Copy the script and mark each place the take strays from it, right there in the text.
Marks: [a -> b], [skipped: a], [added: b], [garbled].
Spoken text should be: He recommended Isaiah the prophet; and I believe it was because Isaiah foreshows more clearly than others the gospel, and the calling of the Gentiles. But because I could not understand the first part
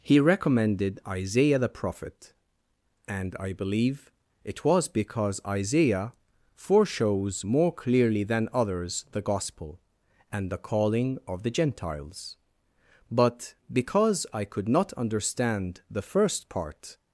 He recommended Isaiah the prophet; and I believe it was because Isaiah foreshows more clearly than others the gospel, and the calling of the Gentiles. But because I could not understand the first part